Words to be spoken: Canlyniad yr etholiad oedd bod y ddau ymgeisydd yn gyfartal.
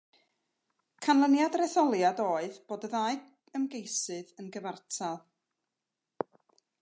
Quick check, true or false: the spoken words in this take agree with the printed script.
true